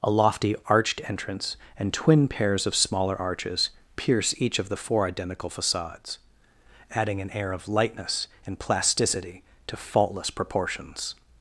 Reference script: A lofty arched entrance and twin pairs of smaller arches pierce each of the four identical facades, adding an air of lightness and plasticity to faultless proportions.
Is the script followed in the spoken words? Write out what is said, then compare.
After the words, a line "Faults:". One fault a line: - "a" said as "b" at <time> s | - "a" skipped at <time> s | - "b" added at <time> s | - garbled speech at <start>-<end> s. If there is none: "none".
A lofty arched entrance and twin pairs of smaller arches pierce each of the four identical facades, adding an air of lightness and plasticity to faultless proportions.
Faults:
none